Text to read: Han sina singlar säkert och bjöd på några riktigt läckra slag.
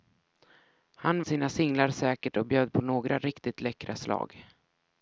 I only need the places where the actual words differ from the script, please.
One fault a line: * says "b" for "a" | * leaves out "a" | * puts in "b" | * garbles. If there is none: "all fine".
all fine